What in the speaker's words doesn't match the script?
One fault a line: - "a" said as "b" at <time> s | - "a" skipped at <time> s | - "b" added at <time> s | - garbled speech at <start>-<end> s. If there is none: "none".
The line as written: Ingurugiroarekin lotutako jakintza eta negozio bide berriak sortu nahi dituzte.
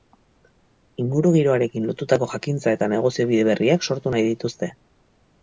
none